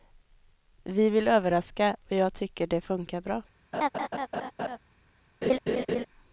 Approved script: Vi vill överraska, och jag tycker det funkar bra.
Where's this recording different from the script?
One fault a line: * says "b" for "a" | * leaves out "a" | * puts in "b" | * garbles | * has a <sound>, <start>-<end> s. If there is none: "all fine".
* has a laugh, 3.7-4.8 s
* has a laugh, 5.4-6.1 s